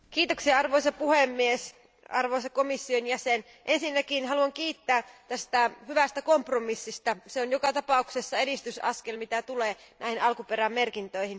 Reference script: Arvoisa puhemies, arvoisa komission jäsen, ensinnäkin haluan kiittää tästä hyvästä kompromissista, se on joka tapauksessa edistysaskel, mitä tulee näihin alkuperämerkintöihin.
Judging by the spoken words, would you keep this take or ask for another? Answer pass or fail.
pass